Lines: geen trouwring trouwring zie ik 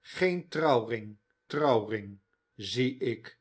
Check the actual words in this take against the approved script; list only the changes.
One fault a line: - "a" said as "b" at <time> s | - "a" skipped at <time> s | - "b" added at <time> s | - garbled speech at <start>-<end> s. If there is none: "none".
none